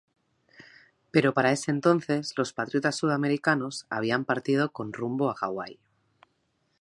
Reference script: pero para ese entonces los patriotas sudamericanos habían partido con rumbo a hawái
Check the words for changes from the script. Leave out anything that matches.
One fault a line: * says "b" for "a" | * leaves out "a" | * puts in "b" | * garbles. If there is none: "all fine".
all fine